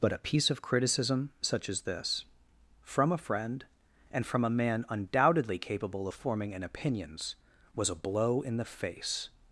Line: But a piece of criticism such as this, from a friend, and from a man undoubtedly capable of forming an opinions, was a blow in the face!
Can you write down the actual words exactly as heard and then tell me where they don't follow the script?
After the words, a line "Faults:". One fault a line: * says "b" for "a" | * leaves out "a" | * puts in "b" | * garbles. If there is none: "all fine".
But a piece of criticism such as this, from a friend, and from a man undoubtedly capable of forming an opinions, was a blow in the face!
Faults:
all fine